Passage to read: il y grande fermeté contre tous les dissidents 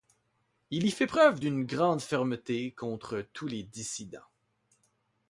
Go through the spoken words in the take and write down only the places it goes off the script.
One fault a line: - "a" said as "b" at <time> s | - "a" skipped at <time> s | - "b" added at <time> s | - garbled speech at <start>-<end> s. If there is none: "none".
- "fait preuve d'une" added at 0.9 s